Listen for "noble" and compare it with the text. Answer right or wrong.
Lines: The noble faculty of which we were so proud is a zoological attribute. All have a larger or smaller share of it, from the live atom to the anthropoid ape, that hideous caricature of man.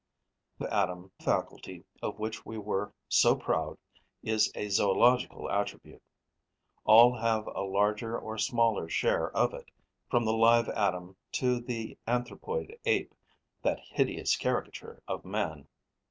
wrong